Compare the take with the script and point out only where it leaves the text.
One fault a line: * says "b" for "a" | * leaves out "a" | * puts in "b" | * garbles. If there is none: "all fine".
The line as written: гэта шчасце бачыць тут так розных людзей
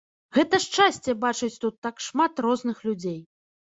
* puts in "шмат"